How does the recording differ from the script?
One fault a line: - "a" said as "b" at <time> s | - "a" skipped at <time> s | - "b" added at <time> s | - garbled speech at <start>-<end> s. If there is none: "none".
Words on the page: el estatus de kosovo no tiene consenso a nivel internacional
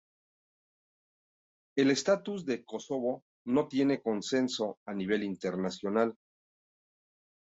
none